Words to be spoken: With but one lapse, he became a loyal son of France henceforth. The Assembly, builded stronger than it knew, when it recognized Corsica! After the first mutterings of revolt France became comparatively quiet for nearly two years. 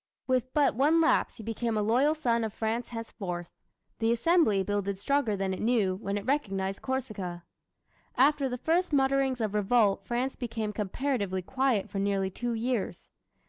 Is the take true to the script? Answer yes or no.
yes